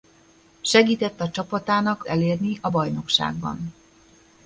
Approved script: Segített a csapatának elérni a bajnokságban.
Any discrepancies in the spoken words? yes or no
no